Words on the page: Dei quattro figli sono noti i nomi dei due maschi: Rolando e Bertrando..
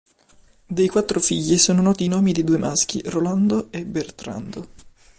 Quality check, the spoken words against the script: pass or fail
pass